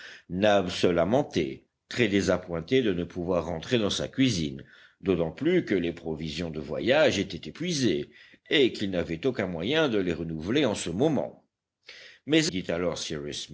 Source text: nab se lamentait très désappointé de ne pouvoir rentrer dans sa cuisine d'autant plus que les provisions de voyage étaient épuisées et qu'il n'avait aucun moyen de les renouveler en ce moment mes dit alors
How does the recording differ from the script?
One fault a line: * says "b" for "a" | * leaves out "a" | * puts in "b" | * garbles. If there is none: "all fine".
all fine